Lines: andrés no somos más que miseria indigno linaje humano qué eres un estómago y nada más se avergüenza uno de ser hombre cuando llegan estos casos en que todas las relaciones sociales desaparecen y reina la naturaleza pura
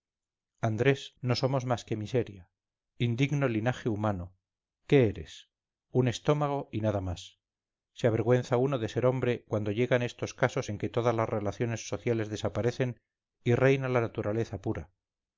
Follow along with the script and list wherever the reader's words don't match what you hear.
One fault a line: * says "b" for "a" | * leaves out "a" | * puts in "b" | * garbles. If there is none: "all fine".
all fine